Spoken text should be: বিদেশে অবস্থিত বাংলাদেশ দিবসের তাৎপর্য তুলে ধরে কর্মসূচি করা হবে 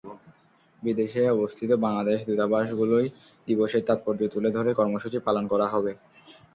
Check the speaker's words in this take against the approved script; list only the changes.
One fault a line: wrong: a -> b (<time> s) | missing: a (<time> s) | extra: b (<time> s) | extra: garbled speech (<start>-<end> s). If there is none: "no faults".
extra: দূতাবাসগুলোয় (2.3 s)
extra: পালন (5.3 s)